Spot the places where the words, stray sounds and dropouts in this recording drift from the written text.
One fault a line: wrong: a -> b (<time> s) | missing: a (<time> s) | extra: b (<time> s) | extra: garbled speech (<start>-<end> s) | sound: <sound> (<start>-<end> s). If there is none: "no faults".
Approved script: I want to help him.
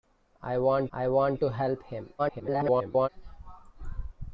extra: I want (0.9 s)
extra: garbled speech (2.2-3.1 s)